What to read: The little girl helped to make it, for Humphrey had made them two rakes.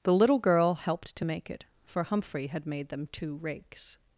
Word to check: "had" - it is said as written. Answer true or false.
true